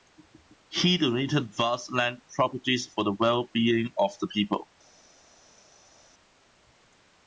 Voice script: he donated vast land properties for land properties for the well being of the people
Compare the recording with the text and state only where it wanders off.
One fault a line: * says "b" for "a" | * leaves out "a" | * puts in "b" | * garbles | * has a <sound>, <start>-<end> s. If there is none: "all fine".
* leaves out "land properties for"